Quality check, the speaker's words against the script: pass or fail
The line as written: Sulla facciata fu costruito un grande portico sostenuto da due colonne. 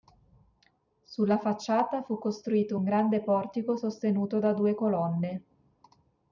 pass